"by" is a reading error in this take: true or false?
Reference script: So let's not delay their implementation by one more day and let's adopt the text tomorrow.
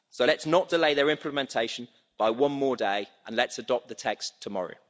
false